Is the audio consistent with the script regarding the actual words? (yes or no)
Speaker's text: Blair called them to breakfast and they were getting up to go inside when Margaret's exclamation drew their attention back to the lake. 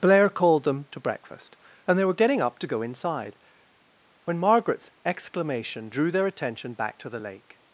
yes